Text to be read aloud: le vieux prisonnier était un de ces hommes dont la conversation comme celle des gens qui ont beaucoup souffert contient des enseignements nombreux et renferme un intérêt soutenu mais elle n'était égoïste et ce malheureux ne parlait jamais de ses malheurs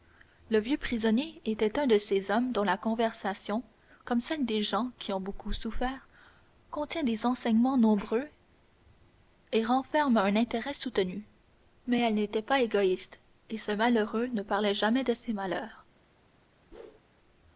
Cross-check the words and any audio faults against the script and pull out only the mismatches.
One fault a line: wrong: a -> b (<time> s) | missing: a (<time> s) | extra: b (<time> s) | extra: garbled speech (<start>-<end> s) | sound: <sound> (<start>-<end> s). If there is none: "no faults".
extra: pas (12.4 s)
sound: whoosh (16.7-17.0 s)